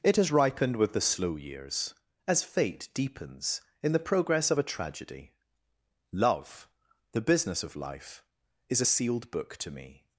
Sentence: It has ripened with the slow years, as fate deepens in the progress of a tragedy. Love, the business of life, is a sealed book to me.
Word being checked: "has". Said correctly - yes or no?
yes